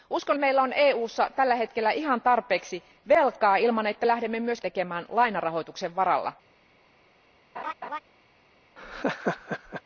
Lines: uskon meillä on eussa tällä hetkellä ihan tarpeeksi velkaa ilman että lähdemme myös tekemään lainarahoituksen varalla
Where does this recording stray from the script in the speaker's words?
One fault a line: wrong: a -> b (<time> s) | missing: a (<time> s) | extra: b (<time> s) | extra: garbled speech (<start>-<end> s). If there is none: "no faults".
no faults